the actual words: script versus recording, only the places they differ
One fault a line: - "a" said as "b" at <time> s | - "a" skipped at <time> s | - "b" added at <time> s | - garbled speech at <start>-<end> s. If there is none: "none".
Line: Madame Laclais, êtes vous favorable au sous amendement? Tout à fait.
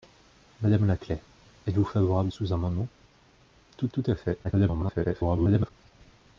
- "au" skipped at 2.3 s
- "tout" added at 3.9 s
- garbled speech at 4.4-5.7 s